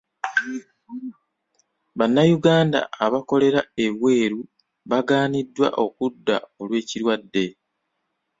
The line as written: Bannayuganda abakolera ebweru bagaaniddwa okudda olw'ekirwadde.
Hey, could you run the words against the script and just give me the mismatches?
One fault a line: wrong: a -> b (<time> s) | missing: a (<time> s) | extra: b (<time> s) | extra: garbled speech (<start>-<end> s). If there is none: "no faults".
no faults